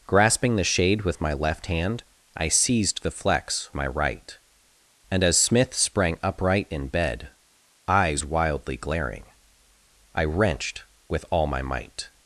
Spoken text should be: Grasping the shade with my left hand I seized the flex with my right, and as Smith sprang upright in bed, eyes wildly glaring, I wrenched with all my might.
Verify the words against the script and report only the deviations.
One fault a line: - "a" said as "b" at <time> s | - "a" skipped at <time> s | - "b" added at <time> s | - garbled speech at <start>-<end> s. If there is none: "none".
- "with" skipped at 3.7 s